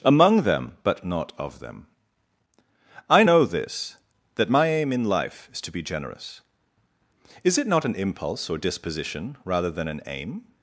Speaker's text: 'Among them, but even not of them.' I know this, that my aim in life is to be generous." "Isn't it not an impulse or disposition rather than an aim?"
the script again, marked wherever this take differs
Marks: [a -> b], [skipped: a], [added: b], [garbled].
'Among them, but [skipped: even] not of them.' I know this, that my aim in life is to be generous." ["Isn't -> Is] it not an impulse or disposition rather than an aim?"